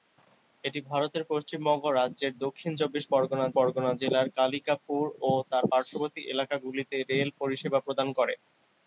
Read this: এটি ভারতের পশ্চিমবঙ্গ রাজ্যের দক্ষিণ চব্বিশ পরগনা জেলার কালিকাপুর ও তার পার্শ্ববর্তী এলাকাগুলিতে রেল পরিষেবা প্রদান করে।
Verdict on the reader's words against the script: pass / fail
fail